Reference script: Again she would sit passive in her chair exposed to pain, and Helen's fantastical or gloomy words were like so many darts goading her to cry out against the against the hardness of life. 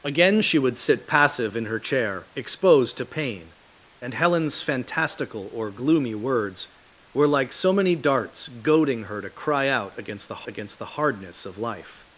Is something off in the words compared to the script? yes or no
no